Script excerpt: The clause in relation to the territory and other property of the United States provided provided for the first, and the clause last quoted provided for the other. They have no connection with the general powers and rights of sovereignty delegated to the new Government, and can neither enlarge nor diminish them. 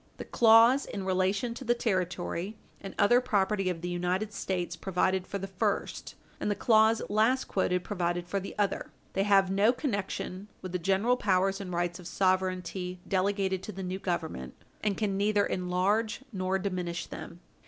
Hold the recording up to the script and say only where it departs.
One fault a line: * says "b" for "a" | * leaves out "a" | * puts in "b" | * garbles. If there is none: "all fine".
* leaves out "provided"